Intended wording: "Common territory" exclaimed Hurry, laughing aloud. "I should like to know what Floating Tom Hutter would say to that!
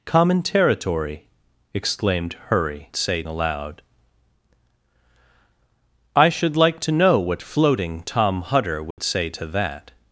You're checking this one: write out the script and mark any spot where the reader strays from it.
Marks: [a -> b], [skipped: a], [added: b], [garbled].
"Common territory" exclaimed Hurry, [laughing -> say] aloud. "I should like to know what Floating Tom Hutter would say to that!